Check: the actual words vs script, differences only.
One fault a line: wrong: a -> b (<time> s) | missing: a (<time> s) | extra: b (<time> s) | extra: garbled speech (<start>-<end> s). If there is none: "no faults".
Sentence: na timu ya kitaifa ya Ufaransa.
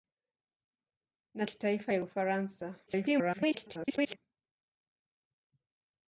missing: timu ya (1.4 s)
extra: garbled speech (2.9-4.2 s)